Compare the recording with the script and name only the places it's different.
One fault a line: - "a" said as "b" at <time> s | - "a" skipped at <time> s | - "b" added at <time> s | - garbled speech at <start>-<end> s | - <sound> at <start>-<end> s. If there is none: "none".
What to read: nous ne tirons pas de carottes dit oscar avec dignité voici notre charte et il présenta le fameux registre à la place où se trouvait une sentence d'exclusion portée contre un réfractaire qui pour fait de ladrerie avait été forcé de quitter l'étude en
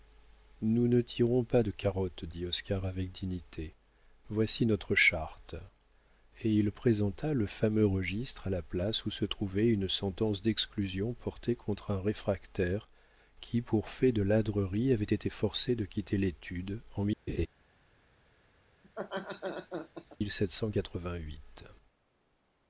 - laugh at 17.3-17.5 s
- laugh at 18.8-20.2 s